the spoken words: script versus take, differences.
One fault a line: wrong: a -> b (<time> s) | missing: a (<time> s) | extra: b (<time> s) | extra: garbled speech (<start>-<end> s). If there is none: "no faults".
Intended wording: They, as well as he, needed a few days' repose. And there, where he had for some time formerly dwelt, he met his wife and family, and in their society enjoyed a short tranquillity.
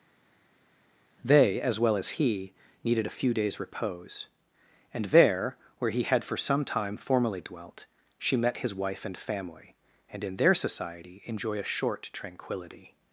wrong: he -> she (8.2 s)
wrong: enjoyed -> enjoy (11.2 s)